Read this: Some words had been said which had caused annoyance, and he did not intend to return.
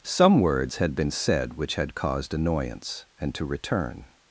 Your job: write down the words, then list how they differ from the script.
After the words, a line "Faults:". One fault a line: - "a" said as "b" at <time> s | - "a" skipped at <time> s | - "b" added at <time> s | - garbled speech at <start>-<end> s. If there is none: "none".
Some words had been said which had caused annoyance, and to return.
Faults:
- "he did not intend" skipped at 3.4 s